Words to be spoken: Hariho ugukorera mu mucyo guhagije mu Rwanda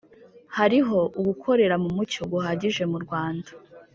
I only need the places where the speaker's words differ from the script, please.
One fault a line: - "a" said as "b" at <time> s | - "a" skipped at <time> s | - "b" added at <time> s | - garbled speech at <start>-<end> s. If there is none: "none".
none